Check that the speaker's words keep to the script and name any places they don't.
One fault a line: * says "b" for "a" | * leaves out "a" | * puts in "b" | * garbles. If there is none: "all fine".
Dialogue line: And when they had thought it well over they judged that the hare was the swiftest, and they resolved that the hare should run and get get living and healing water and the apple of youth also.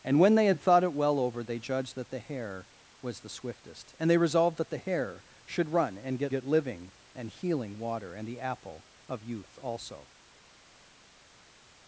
all fine